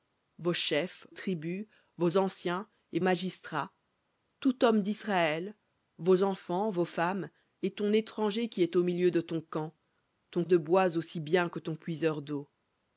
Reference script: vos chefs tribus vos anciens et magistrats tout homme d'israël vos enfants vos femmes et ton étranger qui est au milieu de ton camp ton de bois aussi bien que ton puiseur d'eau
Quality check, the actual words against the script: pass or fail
pass